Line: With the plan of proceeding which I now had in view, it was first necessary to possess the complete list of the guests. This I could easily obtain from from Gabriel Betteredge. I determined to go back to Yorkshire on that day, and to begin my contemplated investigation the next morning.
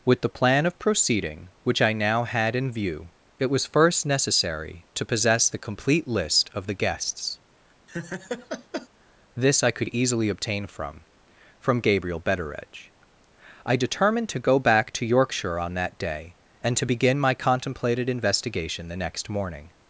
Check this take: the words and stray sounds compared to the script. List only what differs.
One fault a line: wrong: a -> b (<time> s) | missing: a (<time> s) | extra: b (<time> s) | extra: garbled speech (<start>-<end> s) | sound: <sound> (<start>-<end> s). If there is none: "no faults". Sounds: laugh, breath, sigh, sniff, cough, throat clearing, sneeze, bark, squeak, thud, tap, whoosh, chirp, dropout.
sound: laugh (7.9-8.9 s)